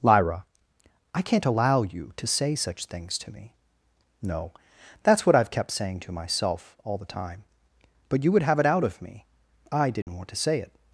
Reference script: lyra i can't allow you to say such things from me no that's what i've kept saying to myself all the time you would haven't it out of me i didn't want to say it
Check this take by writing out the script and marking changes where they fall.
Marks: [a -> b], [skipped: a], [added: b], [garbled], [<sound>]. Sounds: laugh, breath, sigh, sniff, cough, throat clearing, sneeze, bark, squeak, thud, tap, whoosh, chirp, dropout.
lyra i can't allow you to say such things [from -> to] me no that's what i've kept saying to myself all the time [added: but] you would [haven't -> have] it out of me i didn't [dropout] want to say it